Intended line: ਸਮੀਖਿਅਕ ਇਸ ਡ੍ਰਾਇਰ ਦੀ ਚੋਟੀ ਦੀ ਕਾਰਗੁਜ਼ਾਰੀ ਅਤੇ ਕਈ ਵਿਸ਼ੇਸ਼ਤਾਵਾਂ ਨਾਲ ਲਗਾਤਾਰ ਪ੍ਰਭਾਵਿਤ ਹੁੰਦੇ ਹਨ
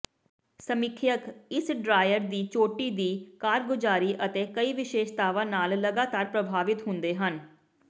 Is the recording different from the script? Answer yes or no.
no